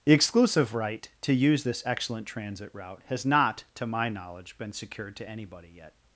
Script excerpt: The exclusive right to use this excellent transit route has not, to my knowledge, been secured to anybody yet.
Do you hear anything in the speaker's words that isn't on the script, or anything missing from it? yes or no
no